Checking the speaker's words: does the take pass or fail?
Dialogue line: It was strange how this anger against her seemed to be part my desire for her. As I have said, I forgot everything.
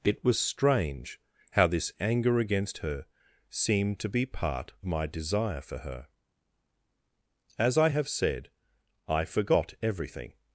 pass